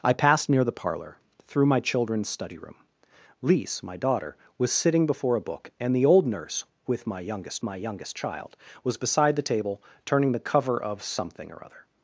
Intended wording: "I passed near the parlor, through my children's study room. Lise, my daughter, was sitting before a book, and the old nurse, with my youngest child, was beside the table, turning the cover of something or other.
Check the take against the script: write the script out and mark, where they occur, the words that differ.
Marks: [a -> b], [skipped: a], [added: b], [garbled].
"I passed near the parlor, through my children's study room. Lise, my daughter, was sitting before a book, and the old nurse, with my youngest [added: my youngest] child, was beside the table, turning the cover of something or other.